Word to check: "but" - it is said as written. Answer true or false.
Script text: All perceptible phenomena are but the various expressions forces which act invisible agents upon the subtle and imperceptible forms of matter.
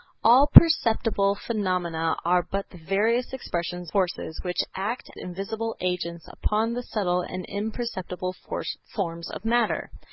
true